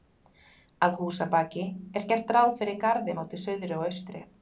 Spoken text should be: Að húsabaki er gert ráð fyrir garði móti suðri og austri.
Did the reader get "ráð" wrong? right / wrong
right